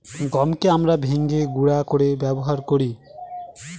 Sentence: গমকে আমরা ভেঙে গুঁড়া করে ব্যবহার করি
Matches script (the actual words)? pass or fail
pass